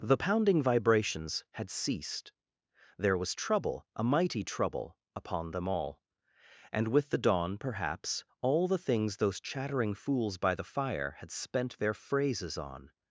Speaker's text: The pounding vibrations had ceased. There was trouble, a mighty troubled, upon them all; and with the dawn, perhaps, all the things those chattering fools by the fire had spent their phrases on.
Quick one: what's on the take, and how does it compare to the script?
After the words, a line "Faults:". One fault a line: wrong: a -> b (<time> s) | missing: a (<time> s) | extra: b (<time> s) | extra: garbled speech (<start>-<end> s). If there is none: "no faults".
The pounding vibrations had ceased. There was trouble, a mighty trouble, upon them all; and with the dawn, perhaps, all the things those chattering fools by the fire had spent their phrases on.
Faults:
wrong: troubled -> trouble (4.4 s)